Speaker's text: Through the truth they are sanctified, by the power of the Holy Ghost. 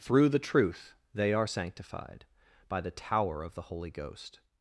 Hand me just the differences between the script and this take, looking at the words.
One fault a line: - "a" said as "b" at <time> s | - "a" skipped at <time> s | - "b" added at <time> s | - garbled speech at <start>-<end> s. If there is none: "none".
- "power" said as "tower" at 2.9 s